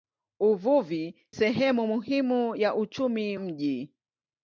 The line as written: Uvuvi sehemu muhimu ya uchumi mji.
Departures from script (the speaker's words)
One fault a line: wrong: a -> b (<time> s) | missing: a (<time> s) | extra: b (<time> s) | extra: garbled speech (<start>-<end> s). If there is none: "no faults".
no faults